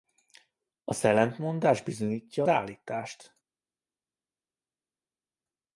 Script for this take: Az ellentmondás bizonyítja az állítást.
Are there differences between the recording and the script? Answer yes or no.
yes